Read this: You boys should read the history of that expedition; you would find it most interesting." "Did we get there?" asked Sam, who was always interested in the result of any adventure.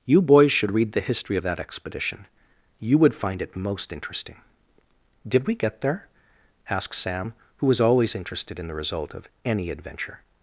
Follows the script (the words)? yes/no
yes